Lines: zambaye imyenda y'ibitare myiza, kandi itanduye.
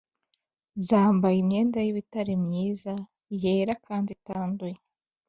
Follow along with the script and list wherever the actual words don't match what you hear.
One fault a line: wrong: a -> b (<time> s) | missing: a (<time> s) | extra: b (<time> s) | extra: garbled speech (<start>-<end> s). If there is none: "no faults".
extra: yera (3.4 s)